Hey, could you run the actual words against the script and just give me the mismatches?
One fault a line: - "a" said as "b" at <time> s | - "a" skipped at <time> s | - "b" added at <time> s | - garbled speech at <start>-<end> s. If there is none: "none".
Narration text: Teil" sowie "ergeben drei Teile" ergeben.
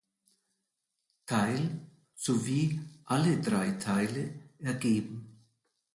- "ergeben" said as "alle" at 3.0 s